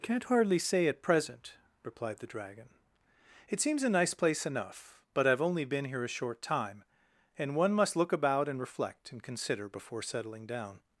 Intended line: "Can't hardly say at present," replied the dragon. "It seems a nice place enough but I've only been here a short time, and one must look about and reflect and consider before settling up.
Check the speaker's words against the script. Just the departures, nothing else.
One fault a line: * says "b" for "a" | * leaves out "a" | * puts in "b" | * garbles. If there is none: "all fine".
* says "down" for "up"